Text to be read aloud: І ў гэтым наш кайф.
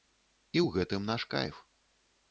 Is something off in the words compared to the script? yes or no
no